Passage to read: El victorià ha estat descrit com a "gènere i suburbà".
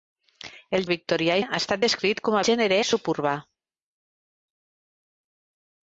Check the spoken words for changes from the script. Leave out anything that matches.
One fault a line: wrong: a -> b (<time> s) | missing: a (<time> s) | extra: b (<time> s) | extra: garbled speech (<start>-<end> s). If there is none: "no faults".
no faults